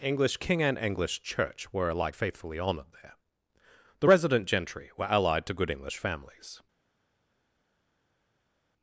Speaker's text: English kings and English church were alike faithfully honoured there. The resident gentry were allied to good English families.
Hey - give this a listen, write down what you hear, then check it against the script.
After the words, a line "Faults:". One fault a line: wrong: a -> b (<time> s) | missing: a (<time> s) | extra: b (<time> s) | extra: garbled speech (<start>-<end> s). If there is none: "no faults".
English king and English church were alike faithfully honoured there. The resident gentry were allied to good English families.
Faults:
wrong: kings -> king (0.4 s)